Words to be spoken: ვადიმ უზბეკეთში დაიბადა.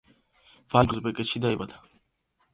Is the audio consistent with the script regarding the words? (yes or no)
yes